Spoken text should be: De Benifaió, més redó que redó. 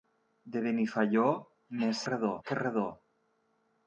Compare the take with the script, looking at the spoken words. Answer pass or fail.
pass